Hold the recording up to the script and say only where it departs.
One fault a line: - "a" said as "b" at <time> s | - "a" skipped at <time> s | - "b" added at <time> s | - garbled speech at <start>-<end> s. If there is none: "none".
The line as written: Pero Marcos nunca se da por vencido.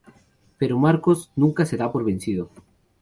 none